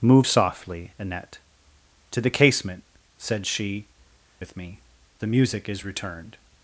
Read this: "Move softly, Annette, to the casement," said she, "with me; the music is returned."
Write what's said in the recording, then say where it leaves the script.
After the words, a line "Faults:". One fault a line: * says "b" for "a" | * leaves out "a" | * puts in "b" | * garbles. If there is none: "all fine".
"Move softly, Annette, to the casement," said she, "with me; the music is returned."
Faults:
all fine